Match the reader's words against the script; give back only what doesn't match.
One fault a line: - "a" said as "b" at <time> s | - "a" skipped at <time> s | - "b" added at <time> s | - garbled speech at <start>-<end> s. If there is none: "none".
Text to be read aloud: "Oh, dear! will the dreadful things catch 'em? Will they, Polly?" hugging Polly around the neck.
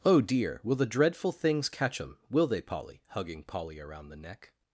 none